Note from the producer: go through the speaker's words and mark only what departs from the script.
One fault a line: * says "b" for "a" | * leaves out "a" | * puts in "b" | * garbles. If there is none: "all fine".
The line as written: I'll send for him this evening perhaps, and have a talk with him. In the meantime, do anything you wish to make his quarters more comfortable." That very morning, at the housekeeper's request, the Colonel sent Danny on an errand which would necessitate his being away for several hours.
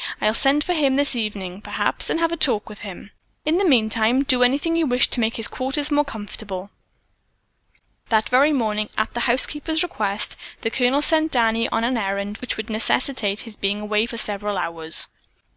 all fine